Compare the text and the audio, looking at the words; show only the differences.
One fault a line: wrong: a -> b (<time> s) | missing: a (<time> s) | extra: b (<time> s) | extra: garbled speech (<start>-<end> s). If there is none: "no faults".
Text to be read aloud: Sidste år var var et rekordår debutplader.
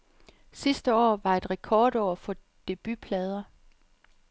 missing: var (1.4 s)
extra: for (2.1 s)